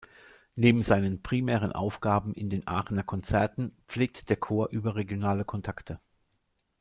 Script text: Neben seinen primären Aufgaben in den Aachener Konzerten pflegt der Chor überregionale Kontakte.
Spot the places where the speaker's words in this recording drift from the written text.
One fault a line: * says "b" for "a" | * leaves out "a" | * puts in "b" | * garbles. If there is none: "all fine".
all fine